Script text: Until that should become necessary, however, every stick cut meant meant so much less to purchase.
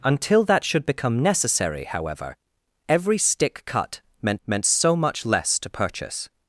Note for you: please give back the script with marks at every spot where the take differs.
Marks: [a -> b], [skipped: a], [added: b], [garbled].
Until that should become necessary, however, every stick cut meant meant so much less to purchase.